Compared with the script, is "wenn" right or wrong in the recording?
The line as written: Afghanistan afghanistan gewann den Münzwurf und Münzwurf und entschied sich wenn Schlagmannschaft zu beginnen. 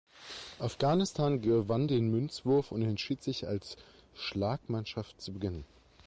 wrong